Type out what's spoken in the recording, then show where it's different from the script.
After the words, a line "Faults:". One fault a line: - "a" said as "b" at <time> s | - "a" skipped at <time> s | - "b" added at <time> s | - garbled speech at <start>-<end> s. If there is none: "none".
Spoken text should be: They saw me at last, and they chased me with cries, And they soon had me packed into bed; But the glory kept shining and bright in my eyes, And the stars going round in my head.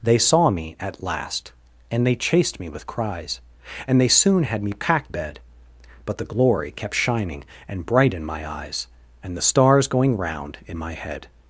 They saw me at last, and they chased me with cries, And they soon had me packed bed; But the glory kept shining and bright in my eyes, And the stars going round in my head.
Faults:
- "into" skipped at 5.1 s